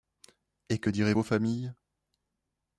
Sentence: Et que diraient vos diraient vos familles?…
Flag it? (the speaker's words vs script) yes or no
yes